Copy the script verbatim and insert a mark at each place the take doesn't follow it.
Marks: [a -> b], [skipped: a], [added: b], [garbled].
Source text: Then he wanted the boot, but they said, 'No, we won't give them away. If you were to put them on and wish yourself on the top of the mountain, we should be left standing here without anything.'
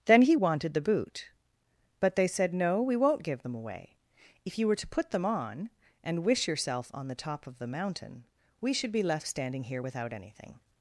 Then he wanted the boot, but they said, 'No, we won't give them away. If you were to put them on and wish yourself on the top of the mountain, we should be left standing here without anything.'